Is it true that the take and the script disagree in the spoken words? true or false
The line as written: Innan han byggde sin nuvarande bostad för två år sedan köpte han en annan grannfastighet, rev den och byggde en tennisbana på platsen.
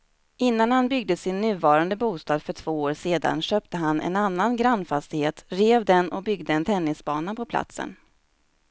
false